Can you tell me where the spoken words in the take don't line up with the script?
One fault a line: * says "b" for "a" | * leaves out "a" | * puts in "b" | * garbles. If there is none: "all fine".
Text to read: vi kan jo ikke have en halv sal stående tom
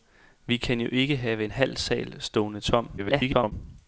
* garbles